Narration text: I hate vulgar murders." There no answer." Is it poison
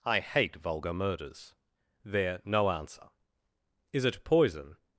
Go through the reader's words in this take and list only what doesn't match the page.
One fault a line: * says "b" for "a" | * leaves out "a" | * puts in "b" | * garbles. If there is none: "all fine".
all fine